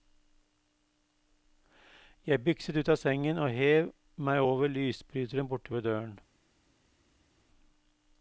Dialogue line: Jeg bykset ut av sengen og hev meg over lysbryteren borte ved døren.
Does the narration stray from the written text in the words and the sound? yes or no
no